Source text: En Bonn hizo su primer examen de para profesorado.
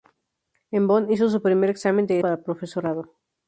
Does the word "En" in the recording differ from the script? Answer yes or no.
no